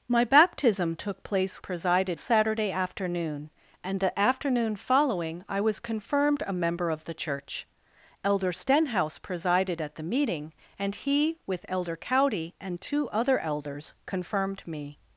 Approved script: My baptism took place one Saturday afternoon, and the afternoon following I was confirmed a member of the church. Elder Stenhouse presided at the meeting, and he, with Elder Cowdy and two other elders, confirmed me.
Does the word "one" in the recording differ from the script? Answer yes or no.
yes